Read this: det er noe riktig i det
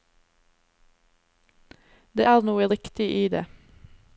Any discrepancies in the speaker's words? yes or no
no